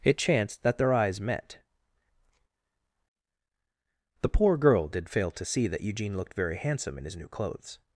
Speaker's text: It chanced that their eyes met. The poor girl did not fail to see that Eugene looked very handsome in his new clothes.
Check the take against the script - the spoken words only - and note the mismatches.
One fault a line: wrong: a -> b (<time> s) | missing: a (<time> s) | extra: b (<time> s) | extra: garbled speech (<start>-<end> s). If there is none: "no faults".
missing: not (5.1 s)